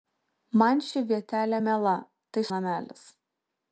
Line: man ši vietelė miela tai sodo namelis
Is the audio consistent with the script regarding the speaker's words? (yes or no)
no